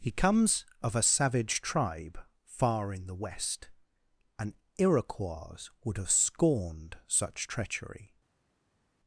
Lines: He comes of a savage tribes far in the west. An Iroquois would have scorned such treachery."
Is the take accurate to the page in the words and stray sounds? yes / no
no